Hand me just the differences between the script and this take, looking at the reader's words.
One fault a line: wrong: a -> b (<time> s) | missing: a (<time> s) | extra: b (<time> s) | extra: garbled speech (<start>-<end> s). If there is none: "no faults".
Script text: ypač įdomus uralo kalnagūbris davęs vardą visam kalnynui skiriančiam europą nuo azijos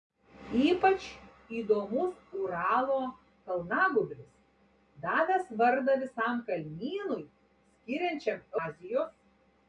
missing: europą nuo (8.4 s)